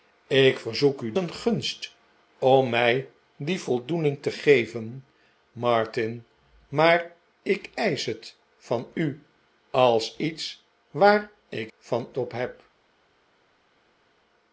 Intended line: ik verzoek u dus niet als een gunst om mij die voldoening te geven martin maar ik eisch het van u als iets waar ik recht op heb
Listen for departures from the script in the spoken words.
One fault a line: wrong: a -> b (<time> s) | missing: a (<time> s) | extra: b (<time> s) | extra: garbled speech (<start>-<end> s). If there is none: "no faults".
missing: dus niet als (1.1 s)
wrong: recht -> van (11.8 s)